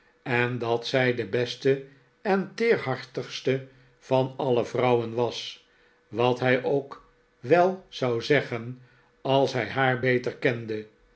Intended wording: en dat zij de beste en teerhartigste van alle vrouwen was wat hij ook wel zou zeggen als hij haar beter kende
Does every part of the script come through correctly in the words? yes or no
yes